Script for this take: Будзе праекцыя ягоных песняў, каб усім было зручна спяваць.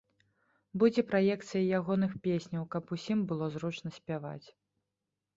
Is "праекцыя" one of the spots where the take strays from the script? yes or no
no